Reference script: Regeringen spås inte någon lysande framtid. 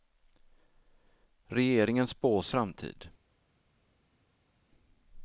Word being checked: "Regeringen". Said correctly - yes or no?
yes